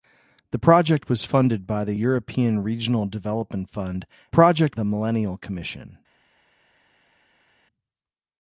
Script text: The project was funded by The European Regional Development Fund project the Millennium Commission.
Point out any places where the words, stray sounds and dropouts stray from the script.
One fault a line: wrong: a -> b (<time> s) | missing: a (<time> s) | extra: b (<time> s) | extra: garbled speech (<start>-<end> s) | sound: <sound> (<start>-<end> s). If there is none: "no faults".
no faults